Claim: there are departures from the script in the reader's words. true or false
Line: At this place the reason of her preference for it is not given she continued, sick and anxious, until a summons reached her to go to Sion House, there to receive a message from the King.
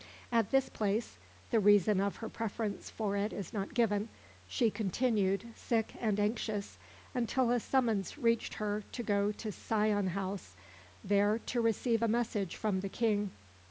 false